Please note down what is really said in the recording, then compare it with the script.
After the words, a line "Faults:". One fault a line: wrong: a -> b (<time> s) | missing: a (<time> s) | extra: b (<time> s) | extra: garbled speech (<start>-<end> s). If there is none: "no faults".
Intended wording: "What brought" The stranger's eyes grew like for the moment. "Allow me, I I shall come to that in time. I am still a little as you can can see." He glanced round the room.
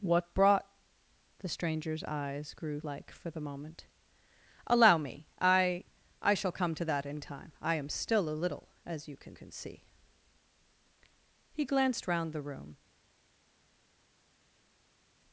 "What brought" The stranger's eyes grew like for the moment. "Allow me, I I shall come to that in time. I am still a little as you can can see." He glanced round the room.
Faults:
no faults